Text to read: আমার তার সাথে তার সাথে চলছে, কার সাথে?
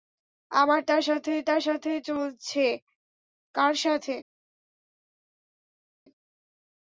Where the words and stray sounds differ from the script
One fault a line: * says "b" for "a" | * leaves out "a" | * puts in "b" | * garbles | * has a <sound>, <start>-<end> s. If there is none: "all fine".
all fine